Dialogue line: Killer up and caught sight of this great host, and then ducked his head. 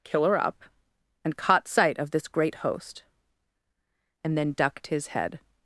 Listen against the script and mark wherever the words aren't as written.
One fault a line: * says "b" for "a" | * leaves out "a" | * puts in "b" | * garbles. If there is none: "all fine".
all fine